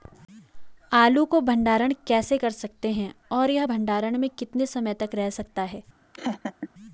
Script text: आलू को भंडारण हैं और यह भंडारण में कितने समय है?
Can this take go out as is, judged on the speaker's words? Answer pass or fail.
fail